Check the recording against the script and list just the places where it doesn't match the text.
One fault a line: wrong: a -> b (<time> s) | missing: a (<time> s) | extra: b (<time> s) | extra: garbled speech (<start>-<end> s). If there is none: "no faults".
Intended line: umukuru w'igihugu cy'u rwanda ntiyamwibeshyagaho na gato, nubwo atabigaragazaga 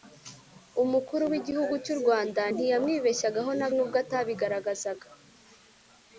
missing: gato (3.7 s)